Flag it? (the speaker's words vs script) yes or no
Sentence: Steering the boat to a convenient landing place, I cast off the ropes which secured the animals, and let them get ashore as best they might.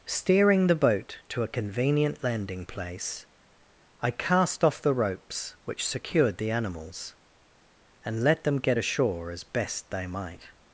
no